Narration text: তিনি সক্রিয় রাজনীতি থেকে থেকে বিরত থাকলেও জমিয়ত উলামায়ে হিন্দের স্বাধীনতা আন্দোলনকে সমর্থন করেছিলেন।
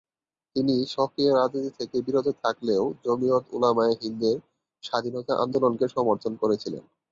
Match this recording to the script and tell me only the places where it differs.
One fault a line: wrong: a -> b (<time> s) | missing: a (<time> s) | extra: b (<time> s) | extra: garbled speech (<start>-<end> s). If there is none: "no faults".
missing: থেকে (2.0 s)